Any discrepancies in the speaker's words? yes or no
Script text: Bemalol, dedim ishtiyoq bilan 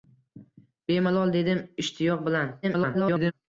yes